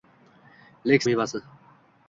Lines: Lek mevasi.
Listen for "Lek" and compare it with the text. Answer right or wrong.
right